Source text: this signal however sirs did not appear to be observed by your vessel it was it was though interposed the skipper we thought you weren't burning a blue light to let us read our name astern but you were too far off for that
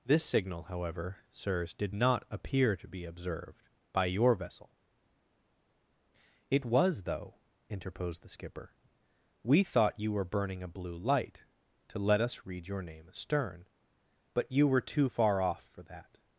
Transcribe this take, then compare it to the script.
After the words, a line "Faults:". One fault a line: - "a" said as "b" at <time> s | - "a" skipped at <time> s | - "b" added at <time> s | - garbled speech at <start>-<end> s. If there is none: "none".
this signal however sirs did not appear to be observed by your vessel it was though interposed the skipper we thought you were burning a blue light to let us read your name astern but you were too far off for that
Faults:
- "it was" skipped at 7.0 s
- "weren't" said as "were" at 10.1 s
- "our" said as "your" at 12.7 s